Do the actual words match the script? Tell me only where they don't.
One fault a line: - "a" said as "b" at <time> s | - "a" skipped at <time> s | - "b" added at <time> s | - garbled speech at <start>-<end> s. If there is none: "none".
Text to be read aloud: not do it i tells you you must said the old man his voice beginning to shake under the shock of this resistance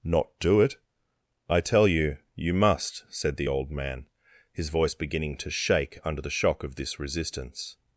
- "tells" said as "tell" at 1.6 s